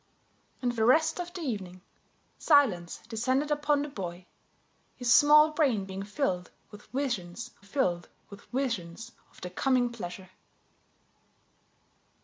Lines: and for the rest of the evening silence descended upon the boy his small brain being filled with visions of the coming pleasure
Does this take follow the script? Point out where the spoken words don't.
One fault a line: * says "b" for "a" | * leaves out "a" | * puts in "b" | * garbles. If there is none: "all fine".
* leaves out "for"
* puts in "filled with visions"